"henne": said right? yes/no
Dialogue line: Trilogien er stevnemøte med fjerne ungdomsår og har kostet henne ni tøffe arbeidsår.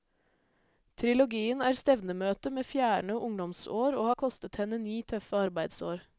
yes